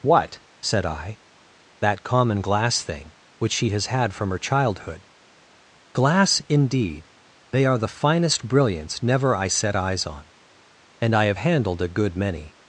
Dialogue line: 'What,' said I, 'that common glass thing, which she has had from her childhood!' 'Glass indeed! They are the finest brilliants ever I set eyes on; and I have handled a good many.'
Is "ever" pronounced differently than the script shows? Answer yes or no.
yes